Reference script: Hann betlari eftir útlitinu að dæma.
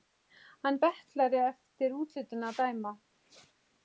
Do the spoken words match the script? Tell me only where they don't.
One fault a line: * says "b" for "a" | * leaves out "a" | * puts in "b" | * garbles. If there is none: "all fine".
all fine